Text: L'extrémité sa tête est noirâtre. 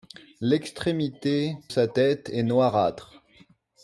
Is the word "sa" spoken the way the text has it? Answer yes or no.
yes